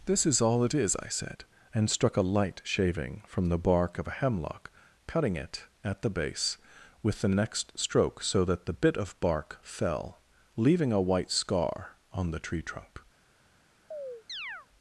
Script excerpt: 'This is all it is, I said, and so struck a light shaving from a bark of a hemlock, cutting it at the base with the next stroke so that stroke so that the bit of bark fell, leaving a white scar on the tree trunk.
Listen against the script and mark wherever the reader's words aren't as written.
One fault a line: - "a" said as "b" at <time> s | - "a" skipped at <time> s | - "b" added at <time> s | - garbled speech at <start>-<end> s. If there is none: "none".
- "so" skipped at 1.9 s
- "a" said as "the" at 3.5 s
- "stroke so that" skipped at 8.7 s